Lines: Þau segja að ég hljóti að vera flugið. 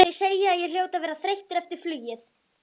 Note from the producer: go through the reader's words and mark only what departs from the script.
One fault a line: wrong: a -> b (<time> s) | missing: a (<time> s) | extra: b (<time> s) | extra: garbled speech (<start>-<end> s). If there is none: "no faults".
extra: þreyttur eftir (1.2 s)